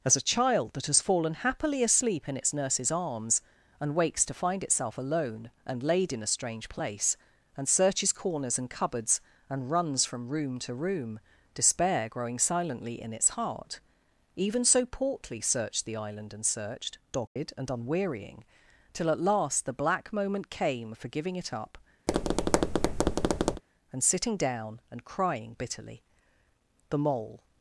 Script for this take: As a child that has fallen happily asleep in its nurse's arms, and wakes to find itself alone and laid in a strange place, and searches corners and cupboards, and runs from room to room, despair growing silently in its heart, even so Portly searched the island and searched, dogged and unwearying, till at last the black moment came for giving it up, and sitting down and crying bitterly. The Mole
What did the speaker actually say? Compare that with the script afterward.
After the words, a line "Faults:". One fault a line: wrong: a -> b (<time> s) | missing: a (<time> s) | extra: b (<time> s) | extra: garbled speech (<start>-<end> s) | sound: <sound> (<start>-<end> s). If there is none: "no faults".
As a child that has fallen happily asleep in its nurse's arms, and wakes to find itself alone and laid in a strange place, and searches corners and cupboards, and runs from room to room, despair growing silently in its heart, even so Portly searched the island and searched, dogged and unwearying, till at last the black moment came for giving it up, and sitting down and crying bitterly. The Mole
Faults:
sound: dropout (17.3-17.4 s)
sound: tap (22.1-23.6 s)